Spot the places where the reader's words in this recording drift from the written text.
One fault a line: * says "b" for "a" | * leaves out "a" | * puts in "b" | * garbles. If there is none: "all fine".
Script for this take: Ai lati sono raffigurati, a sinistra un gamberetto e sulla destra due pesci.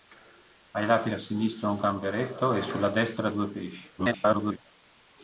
* leaves out "sono raffigurati"
* garbles